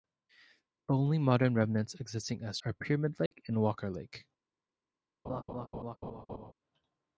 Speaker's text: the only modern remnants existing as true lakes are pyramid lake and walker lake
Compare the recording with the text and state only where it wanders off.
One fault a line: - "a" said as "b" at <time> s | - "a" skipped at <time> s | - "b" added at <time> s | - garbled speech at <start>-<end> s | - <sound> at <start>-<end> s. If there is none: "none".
- "true lakes" skipped at 2.6 s
- dropout at 3.3-3.3 s
- laugh at 5.2-6.5 s